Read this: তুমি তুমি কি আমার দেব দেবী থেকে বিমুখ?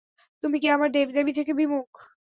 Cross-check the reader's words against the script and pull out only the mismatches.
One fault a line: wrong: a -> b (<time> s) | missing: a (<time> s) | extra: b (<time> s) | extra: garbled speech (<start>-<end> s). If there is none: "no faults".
missing: তুমি (0.6 s)